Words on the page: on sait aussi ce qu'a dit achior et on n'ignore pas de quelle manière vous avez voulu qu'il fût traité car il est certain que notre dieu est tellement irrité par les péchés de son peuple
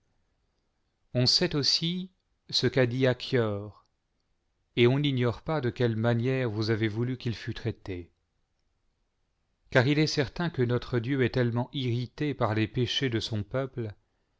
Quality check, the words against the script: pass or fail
pass